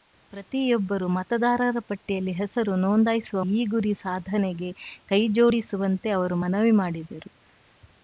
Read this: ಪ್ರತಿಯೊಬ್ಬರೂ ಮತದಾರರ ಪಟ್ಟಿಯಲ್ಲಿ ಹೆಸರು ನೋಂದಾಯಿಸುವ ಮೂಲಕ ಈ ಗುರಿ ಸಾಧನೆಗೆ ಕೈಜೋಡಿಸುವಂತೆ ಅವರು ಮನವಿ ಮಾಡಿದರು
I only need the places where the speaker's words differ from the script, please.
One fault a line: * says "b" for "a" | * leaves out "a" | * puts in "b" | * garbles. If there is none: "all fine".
* leaves out "ಮೂಲಕ"